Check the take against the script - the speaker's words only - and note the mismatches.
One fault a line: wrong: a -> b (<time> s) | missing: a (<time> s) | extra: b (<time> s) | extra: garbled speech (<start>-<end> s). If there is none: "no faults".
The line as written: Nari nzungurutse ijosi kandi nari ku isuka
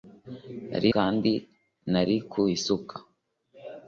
missing: nzungurutse ijosi (0.9 s)